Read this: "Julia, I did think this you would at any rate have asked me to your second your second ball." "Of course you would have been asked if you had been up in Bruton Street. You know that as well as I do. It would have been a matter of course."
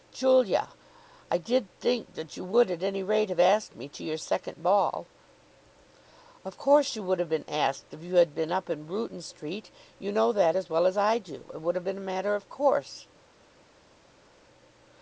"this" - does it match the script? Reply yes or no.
no